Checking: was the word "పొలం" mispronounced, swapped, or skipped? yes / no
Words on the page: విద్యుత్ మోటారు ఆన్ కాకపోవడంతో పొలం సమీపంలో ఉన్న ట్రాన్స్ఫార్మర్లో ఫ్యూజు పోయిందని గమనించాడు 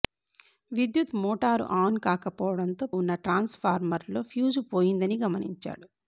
yes